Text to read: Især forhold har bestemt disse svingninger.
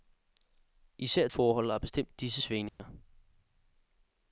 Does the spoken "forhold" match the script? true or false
true